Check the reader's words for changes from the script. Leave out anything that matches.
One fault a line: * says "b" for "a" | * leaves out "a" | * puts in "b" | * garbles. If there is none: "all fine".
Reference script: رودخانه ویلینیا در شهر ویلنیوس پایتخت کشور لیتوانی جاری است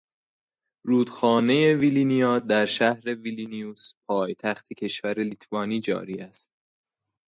all fine